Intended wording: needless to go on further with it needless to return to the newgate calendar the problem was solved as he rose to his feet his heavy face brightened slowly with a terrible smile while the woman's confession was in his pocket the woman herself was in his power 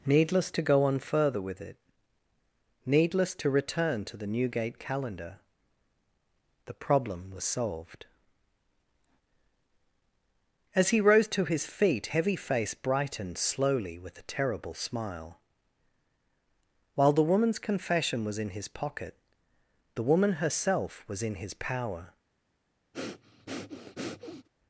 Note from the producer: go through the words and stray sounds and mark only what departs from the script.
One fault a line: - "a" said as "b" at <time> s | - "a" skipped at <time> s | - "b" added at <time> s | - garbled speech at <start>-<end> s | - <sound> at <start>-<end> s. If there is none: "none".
- "his" skipped at 12.1 s
- breath at 22.9-24.5 s